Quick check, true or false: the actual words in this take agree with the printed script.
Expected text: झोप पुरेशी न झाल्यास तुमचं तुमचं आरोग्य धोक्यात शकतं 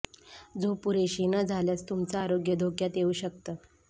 false